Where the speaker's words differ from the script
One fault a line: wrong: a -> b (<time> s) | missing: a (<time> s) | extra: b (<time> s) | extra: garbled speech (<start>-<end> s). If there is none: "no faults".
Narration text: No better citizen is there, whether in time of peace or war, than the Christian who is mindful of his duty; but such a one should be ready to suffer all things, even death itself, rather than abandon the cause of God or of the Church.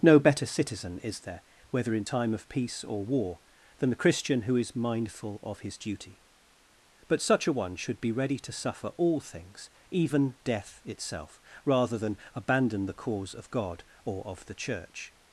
no faults